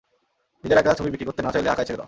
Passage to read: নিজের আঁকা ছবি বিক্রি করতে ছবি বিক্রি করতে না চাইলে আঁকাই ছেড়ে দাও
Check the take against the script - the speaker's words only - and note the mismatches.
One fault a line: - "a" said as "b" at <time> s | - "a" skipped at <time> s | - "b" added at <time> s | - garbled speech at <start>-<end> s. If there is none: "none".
- "ছবি বিক্রি করতে" skipped at 1.4 s